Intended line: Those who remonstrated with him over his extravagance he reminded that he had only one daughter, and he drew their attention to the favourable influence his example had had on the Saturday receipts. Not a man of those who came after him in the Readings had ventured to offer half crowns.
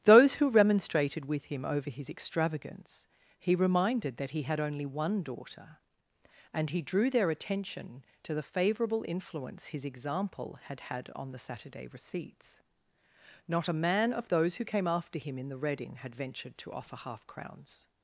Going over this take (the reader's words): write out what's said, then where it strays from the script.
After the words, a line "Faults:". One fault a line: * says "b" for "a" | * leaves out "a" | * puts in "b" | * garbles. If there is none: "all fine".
Those who remonstrated with him over his extravagance he reminded that he had only one daughter, and he drew their attention to the favourable influence his example had had on the Saturday receipts. Not a man of those who came after him in the Reading had ventured to offer half crowns.
Faults:
* says "Reading" for "Readings"